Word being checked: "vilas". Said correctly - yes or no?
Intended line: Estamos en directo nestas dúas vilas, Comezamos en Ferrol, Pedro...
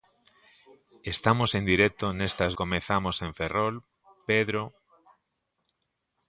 no